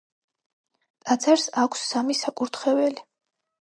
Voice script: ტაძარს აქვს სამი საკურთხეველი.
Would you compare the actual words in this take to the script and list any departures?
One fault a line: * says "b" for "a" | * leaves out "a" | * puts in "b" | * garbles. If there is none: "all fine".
all fine